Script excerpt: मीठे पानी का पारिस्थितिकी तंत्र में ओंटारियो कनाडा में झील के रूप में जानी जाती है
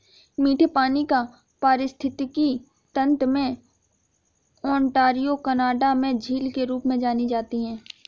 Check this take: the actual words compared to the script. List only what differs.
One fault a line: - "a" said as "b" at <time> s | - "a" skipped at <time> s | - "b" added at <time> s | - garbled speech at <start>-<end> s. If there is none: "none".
none